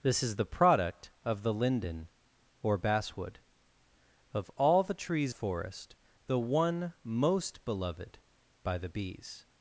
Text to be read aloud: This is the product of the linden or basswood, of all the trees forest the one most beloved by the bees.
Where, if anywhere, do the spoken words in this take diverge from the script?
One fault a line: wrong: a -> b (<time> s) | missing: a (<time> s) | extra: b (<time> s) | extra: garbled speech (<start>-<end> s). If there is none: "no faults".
no faults